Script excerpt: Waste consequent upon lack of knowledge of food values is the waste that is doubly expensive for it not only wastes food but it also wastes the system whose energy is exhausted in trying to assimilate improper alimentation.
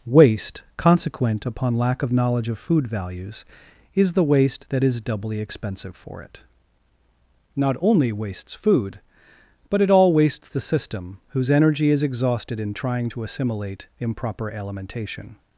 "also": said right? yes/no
no